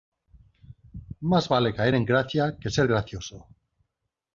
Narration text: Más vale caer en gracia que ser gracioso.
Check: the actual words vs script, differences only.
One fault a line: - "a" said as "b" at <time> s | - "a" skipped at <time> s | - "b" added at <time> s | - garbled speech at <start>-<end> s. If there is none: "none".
none